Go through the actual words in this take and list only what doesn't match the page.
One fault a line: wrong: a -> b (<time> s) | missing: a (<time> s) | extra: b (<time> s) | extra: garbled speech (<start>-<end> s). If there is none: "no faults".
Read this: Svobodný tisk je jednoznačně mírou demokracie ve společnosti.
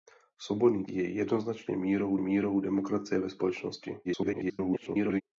missing: tisk (0.8 s)
extra: mírou (2.2 s)
extra: garbled speech (4.0-5.2 s)